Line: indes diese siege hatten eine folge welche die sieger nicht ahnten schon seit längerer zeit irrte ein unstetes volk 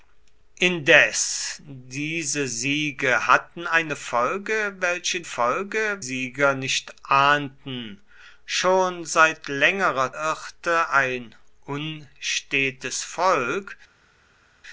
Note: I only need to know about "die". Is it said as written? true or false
false